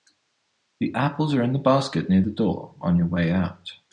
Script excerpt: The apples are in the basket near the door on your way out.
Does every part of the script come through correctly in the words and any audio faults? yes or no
yes